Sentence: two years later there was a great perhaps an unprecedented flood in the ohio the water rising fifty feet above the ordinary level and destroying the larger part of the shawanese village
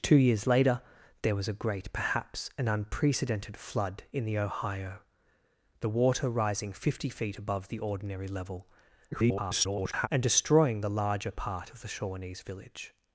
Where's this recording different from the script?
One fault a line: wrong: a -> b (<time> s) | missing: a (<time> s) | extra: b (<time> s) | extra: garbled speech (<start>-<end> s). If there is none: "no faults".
extra: garbled speech (9.1-10.1 s)